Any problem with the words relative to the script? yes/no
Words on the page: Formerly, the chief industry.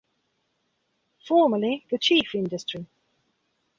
no